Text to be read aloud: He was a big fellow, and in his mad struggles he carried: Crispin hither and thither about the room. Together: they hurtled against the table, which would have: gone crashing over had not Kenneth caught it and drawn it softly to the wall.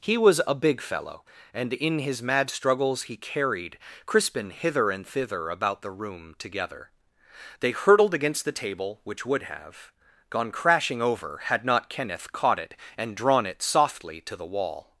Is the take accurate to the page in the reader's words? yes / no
yes